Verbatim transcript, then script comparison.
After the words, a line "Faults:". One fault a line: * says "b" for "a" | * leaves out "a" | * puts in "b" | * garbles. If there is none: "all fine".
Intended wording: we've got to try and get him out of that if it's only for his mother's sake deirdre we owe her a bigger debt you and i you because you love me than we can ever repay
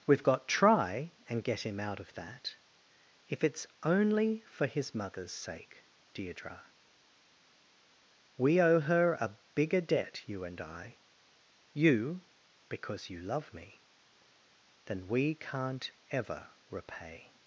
we've got try and get him out of that if it's only for his mother's sake deirdre we owe her a bigger debt you and i you because you love me than we can't ever repay
Faults:
* leaves out "to"
* says "can't" for "can"